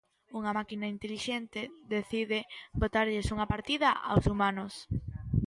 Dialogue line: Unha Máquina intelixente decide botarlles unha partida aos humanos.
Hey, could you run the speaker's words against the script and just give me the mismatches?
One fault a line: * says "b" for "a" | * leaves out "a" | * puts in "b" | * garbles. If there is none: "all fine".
all fine